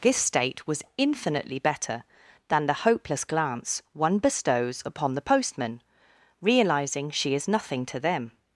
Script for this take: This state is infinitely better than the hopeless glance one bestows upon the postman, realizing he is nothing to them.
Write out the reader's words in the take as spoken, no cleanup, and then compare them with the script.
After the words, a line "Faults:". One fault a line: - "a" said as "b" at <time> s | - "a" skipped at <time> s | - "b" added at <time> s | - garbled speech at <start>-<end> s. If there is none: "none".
This state was infinitely better than the hopeless glance one bestows upon the postman, realizing she is nothing to them.
Faults:
- "is" said as "was" at 0.7 s
- "he" said as "she" at 7.1 s